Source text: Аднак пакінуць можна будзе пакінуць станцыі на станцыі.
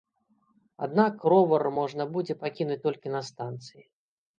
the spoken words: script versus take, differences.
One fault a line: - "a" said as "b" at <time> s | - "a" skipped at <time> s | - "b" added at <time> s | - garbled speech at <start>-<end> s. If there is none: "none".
- "пакінуць" said as "ровар" at 1.4 s
- "станцыі" said as "толькі" at 2.9 s